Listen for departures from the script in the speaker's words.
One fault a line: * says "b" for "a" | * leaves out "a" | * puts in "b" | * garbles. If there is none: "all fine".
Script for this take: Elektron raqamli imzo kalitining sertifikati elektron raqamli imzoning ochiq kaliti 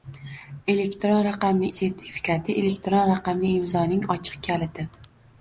* leaves out "imzo kalitining"